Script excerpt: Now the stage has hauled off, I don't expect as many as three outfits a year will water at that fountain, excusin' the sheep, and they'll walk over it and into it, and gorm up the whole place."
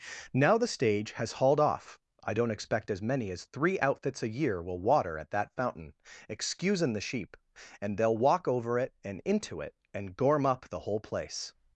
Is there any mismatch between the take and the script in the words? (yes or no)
no